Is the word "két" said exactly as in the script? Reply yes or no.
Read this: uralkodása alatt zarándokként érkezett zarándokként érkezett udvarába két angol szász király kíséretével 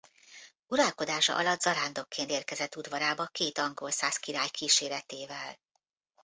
yes